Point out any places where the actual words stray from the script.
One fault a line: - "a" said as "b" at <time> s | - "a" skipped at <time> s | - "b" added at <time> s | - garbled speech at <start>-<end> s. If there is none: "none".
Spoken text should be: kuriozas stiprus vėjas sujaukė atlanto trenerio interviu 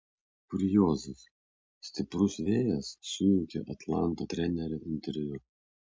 none